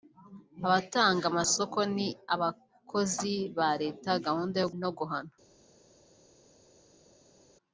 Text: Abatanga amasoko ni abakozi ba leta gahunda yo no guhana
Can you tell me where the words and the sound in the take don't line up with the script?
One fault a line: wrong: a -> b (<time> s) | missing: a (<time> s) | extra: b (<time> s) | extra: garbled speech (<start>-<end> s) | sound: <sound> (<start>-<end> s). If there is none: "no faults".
no faults